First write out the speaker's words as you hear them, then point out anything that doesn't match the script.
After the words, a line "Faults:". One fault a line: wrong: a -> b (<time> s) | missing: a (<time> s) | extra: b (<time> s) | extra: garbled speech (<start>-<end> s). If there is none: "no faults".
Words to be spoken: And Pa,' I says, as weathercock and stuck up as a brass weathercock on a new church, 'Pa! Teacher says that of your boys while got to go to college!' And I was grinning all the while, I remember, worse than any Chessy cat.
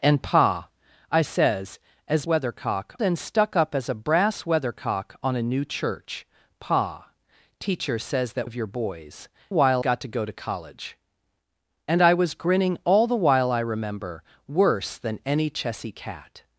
And Pa,' I says, as weathercock and stuck up as a brass weathercock on a new church, 'Pa! Teacher says that of your boys while got to go to college!' And I was grinning all the while, I remember, worse than any Chessy cat.
Faults:
no faults